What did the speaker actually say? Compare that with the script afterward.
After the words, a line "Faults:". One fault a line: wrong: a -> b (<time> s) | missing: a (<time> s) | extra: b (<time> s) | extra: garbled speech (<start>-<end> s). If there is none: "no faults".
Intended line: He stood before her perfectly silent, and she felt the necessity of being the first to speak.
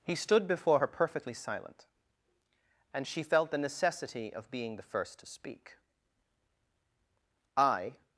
He stood before her perfectly silent, and she felt the necessity of being the first to speak. "I
Faults:
extra: I (7.6 s)